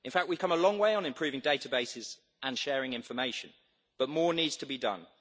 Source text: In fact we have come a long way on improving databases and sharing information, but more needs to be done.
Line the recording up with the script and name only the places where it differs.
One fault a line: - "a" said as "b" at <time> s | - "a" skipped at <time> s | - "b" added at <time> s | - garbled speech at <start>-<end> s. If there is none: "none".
none